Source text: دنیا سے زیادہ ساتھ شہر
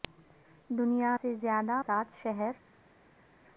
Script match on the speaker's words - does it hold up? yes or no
yes